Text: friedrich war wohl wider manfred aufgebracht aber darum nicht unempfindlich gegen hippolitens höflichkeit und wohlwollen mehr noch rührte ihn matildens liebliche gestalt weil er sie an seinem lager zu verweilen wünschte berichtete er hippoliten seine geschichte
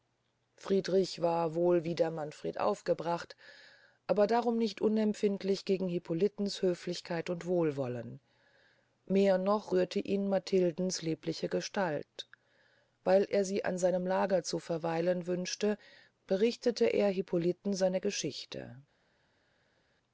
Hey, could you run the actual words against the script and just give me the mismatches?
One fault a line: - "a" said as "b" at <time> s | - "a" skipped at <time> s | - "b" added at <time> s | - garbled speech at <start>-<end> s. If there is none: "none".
none